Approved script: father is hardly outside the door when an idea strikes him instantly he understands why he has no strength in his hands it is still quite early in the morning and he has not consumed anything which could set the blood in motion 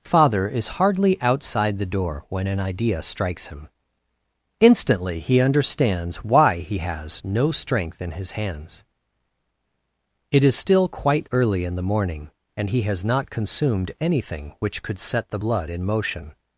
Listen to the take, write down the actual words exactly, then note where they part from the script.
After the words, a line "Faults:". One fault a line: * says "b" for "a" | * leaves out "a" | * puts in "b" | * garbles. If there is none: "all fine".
father is hardly outside the door when an idea strikes him instantly he understands why he has no strength in his hands it is still quite early in the morning and he has not consumed anything which could set the blood in motion
Faults:
all fine